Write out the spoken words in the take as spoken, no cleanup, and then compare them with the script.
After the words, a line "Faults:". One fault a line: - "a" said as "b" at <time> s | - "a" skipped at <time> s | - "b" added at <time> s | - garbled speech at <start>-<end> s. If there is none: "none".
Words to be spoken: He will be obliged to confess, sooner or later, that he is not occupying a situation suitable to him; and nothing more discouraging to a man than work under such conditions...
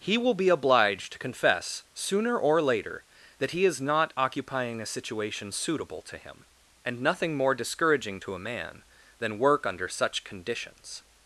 He will be obliged to confess, sooner or later, that he is not occupying a situation suitable to him; and nothing more discouraging to a man than work under such conditions...
Faults:
none